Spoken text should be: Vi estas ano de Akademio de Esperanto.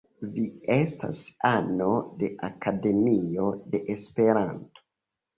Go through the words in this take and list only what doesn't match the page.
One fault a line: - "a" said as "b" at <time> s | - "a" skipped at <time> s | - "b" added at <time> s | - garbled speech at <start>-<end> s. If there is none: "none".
none